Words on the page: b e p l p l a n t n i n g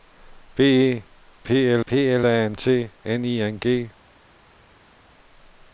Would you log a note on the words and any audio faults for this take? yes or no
no